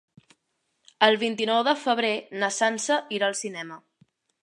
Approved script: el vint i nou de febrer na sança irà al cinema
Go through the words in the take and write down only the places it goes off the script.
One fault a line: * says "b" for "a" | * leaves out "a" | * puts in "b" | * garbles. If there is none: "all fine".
all fine